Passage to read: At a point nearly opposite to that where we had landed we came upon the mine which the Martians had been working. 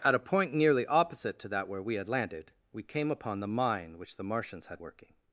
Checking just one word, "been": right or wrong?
wrong